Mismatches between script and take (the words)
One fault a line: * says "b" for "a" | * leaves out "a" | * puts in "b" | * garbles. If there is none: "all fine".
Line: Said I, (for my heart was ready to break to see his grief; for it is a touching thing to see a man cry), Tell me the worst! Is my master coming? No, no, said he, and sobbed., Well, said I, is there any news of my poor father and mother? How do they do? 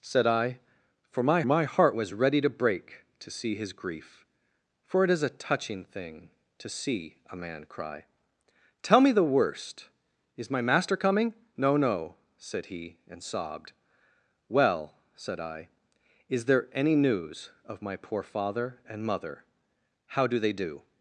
* puts in "my"